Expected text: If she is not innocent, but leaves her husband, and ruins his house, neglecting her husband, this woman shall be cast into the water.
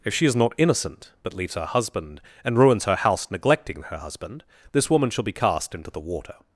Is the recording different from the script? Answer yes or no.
yes